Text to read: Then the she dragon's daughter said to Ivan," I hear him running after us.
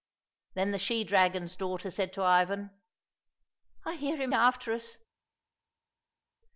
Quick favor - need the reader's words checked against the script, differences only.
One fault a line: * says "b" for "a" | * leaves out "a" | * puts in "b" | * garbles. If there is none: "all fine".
* leaves out "running"